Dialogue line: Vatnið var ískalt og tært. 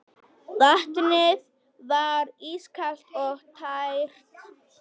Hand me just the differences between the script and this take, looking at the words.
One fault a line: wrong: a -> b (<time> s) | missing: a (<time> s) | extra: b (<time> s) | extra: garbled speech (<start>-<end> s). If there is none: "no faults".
no faults